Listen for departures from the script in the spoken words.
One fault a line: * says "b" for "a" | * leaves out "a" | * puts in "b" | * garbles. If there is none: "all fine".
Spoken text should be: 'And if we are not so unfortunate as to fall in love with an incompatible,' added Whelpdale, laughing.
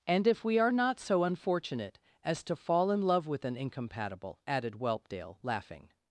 all fine